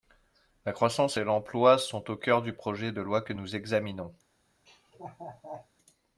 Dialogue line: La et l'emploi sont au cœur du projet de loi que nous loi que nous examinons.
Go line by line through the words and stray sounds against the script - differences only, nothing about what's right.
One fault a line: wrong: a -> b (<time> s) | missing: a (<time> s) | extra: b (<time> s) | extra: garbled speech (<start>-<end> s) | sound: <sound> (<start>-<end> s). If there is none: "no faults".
extra: croissance (0.7 s)
missing: loi que nous (3.6 s)
sound: laugh (4.7-5.7 s)